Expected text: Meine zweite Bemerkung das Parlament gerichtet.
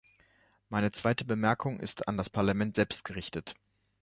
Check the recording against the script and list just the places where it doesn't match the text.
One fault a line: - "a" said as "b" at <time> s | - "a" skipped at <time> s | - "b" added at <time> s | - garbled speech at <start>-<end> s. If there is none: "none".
- "ist an" added at 1.8 s
- "selbst" added at 2.8 s